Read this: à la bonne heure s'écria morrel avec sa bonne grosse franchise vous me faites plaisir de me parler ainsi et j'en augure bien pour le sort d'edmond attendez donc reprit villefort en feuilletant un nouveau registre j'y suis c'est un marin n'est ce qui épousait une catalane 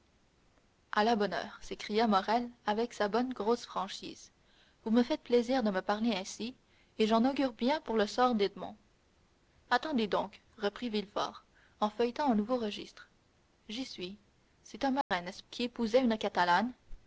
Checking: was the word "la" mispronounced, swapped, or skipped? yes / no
no